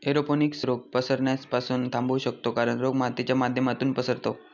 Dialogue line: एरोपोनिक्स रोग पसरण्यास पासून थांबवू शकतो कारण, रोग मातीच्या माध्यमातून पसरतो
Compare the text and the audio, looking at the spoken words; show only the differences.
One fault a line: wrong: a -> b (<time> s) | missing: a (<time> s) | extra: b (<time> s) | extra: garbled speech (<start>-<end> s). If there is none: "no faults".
no faults